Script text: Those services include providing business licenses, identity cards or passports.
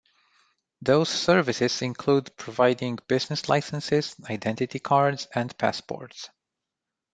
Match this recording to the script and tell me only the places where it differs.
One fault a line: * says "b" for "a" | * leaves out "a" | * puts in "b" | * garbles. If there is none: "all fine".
* says "and" for "or"